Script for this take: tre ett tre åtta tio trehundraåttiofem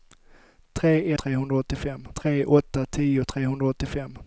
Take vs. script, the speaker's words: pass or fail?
fail